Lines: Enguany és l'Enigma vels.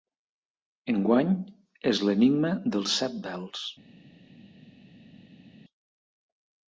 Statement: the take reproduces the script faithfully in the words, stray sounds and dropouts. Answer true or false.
false